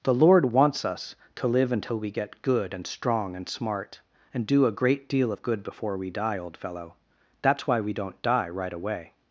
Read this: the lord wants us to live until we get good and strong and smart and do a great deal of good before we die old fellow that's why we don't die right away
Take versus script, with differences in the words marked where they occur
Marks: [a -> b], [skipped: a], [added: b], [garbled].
the lord wants us to live until we get good and strong and smart and do a great deal of good before we die old fellow that's why we don't die right away